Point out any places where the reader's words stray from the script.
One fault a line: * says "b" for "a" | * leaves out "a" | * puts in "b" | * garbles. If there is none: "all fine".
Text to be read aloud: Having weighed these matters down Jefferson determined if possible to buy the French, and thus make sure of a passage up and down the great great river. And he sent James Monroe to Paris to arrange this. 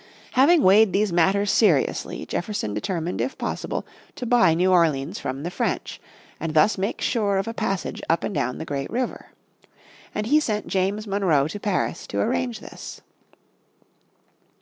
* says "seriously" for "down"
* puts in "new Orleans from"
* leaves out "great"